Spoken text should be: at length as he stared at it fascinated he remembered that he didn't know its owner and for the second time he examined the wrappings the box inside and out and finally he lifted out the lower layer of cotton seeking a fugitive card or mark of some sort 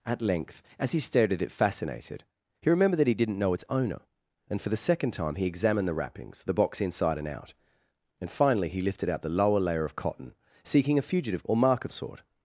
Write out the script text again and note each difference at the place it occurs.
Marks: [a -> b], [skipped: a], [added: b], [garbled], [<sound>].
at length as he stared at it fascinated he remembered that he didn't know its owner and for the second time he examined the wrappings the box inside and out and finally he lifted out the lower layer of cotton seeking a fugitive [skipped: card] or mark of [skipped: some] sort